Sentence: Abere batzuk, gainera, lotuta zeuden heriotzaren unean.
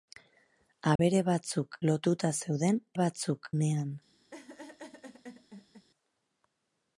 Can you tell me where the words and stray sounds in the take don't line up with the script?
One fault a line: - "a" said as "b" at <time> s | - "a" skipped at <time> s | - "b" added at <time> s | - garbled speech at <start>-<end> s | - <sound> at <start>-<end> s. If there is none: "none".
- dropout at 1.0-1.0 s
- "gainera" skipped at 1.8 s
- "heriotzaren" said as "batzuk" at 3.0 s
- laugh at 4.3-5.9 s